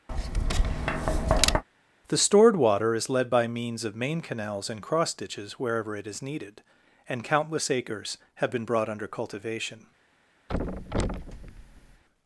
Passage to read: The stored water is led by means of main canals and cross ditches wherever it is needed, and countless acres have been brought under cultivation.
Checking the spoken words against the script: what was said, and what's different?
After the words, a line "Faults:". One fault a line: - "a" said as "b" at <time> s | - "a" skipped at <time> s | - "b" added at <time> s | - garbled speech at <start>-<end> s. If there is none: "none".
The stored water is led by means of main canals and cross ditches wherever it is needed, and countless acres have been brought under cultivation.
Faults:
none